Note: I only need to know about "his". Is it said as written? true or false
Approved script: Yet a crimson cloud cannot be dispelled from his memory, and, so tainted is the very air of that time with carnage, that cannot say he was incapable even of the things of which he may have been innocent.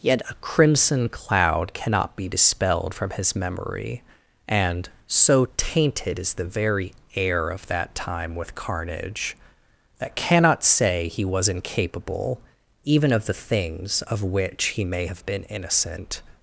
true